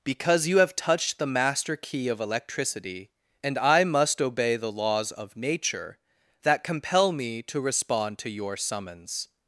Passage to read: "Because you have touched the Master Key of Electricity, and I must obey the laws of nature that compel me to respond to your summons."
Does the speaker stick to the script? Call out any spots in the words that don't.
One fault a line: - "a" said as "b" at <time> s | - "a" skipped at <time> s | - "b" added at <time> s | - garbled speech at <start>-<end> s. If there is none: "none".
none